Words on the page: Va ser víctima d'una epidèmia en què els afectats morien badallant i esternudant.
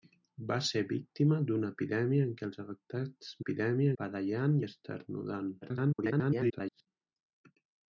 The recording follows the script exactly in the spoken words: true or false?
false